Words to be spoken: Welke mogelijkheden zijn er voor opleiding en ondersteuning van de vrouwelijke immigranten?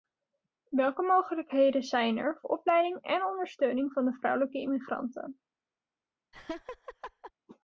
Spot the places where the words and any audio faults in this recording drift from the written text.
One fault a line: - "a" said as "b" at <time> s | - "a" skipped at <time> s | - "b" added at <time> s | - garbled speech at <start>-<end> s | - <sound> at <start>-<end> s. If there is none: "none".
- "voor" skipped at 2.4 s
- laugh at 6.3-7.3 s